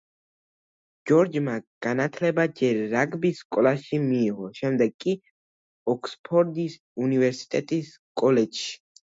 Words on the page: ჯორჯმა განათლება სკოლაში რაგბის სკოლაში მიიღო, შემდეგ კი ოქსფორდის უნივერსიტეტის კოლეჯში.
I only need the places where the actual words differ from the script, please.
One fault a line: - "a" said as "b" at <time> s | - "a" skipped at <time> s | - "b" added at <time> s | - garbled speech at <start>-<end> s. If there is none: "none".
- "სკოლაში" said as "ჯერ" at 2.6 s